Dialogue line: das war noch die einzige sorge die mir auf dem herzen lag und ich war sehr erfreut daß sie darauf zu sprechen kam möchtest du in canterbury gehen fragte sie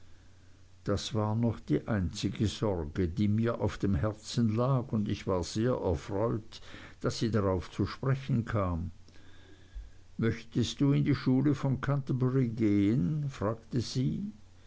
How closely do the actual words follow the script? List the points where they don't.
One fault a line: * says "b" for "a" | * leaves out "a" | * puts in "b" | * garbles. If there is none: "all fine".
* puts in "die schule von"